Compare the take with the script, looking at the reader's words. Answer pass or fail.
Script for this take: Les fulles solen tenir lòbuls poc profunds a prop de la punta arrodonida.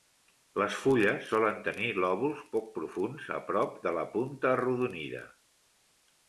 pass